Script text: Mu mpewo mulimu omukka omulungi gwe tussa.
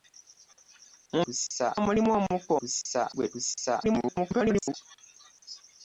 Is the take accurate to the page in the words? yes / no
no